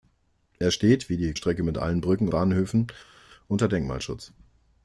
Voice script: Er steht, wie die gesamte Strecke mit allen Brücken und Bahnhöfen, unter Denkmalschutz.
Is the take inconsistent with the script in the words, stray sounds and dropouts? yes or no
yes